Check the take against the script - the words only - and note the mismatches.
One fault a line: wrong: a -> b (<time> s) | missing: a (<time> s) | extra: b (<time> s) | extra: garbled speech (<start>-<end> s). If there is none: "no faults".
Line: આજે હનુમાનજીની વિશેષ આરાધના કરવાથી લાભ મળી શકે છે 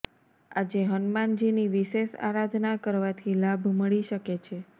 no faults